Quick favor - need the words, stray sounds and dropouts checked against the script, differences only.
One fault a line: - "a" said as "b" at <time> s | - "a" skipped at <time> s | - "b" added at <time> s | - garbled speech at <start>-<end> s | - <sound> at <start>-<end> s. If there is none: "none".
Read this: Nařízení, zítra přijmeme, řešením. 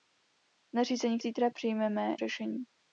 none